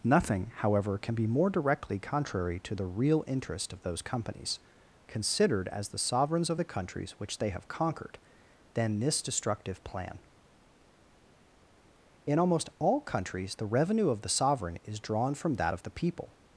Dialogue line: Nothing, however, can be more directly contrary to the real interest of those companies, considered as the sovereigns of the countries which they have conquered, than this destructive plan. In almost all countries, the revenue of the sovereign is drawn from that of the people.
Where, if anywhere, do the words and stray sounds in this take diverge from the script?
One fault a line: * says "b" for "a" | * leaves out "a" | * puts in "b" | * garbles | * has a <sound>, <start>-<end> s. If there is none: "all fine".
all fine